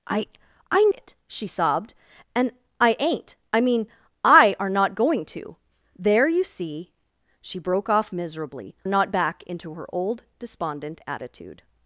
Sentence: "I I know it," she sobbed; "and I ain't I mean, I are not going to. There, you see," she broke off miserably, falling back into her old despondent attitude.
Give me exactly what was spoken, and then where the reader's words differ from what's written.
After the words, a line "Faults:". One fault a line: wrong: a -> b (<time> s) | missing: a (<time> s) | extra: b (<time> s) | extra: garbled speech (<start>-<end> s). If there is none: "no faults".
"I I it," she sobbed; "and I ain't I mean, I are not going to. There, you see," she broke off miserably, not back into her old despondent attitude.
Faults:
missing: know (0.8 s)
wrong: falling -> not (8.9 s)